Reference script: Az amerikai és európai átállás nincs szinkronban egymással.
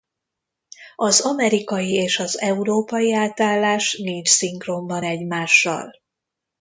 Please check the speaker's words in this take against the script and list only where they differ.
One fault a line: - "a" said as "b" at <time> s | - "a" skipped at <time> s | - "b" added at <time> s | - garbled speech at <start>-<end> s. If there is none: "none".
- "az" added at 2.2 s